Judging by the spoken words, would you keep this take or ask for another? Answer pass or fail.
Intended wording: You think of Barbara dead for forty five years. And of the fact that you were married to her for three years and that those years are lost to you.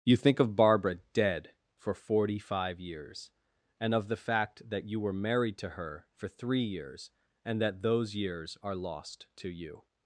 pass